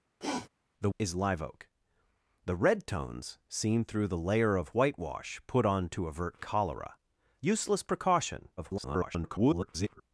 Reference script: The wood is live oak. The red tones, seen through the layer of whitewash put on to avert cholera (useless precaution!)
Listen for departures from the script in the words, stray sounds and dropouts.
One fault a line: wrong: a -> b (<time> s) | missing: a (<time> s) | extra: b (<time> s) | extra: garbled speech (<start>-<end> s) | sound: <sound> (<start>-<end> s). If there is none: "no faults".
sound: sniff (0.2-0.5 s)
missing: wood (0.9 s)
extra: garbled speech (8.6-10.0 s)